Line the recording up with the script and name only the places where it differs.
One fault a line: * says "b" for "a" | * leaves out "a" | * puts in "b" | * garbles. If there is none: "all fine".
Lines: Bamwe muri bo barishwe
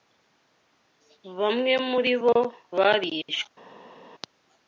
all fine